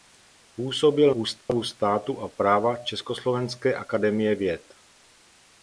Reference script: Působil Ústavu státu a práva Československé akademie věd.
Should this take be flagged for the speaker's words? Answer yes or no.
no